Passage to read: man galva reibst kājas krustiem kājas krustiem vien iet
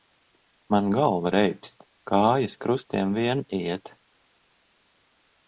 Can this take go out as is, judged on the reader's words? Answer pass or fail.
fail